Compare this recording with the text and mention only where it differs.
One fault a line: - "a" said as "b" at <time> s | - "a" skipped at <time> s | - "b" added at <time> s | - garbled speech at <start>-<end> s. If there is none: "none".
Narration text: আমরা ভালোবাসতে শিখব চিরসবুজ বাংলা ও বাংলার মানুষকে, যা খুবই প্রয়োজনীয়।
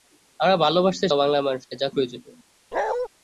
- "শিখব চিরসবুজ বাংলা" skipped at 1.1 s
- "খুবই" skipped at 1.9 s